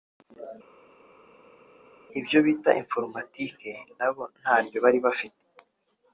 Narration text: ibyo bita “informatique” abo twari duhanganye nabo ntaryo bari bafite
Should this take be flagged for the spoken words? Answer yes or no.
yes